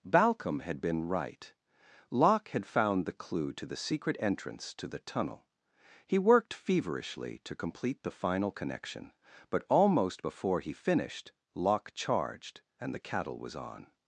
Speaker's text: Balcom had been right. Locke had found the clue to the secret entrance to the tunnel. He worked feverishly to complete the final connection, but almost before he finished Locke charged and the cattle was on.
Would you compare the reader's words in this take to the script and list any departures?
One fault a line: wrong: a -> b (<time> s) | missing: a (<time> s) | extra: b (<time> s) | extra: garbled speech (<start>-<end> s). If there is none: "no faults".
no faults